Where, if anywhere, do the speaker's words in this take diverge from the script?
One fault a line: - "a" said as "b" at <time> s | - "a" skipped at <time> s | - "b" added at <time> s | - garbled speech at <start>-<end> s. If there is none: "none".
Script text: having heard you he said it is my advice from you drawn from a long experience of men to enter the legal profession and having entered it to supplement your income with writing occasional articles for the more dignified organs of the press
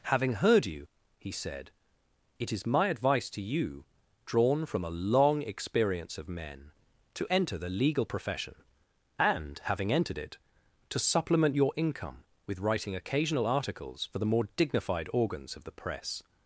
- "from" said as "to" at 3.3 s